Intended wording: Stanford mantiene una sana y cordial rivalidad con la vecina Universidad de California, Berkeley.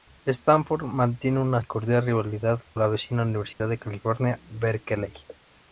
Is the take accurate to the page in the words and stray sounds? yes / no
no